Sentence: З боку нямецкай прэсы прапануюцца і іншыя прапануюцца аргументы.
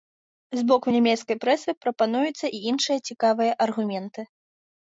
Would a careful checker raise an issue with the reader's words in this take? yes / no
yes